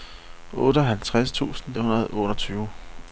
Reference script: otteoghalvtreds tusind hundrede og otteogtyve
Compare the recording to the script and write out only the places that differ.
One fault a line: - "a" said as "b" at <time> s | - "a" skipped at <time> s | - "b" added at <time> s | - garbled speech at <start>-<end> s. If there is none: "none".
none